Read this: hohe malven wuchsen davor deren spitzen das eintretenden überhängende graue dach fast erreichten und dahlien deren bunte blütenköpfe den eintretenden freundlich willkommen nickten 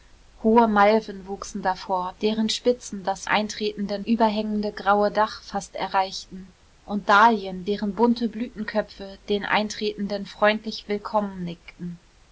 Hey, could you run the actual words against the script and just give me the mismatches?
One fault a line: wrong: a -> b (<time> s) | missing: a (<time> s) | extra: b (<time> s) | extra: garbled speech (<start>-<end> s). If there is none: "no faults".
no faults